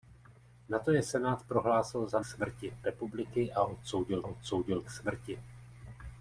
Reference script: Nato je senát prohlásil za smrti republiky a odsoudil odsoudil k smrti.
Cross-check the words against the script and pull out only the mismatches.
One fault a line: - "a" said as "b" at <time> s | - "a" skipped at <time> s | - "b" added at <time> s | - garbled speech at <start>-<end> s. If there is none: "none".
none